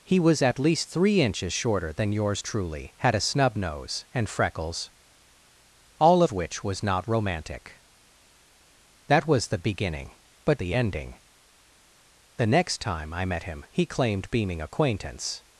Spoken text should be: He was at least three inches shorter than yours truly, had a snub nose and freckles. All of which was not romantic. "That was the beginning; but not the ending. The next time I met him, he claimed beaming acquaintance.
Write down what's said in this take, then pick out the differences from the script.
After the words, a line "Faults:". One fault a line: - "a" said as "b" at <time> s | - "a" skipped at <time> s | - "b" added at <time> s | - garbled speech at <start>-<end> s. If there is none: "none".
He was at least three inches shorter than yours truly, had a snub nose and freckles. All of which was not romantic. "That was the beginning; but the ending. The next time I met him, he claimed beaming acquaintance.
Faults:
- "not" skipped at 10.6 s